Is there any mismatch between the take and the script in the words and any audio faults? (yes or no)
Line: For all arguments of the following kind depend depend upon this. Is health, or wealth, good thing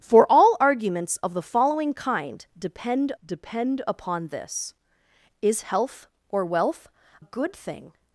no